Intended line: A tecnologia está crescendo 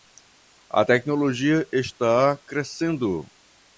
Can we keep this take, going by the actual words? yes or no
yes